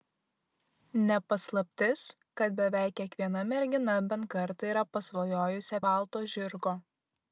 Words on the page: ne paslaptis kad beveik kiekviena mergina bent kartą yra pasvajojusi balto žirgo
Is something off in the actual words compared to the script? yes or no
no